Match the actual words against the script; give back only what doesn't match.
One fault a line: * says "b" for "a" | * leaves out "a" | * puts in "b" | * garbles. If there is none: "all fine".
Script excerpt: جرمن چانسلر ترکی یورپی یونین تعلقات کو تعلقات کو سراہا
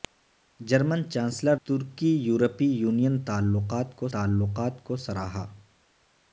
all fine